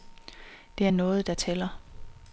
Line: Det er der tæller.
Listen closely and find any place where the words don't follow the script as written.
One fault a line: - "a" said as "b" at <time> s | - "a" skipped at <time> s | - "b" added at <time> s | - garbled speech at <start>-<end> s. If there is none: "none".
- "noget" added at 0.9 s